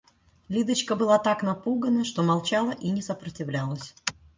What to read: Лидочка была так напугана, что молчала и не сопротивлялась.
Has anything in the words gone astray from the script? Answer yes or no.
no